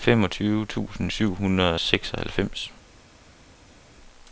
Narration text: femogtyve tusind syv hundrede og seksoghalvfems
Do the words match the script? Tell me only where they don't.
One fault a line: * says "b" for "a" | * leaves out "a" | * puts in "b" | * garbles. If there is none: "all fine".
all fine